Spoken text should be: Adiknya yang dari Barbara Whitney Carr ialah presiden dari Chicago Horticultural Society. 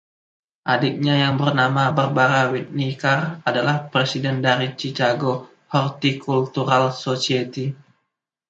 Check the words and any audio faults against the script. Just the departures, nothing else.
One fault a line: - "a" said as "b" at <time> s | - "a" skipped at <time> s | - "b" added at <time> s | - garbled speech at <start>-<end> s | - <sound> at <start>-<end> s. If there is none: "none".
- "dari" said as "bernama" at 1.4 s
- "ialah" said as "adalah" at 3.5 s